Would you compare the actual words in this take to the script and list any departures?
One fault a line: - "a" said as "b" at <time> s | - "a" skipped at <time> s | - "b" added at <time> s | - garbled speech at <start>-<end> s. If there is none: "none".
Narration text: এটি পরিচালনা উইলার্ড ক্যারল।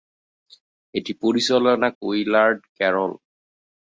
none